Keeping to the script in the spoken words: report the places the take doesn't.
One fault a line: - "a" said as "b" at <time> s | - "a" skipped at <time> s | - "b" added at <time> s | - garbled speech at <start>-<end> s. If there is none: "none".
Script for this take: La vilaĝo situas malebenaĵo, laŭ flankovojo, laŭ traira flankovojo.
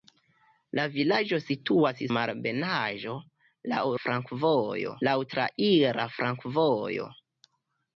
none